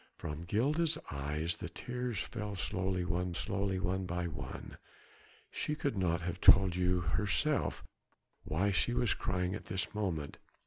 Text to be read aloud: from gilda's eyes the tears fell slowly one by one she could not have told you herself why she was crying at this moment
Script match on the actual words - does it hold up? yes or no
no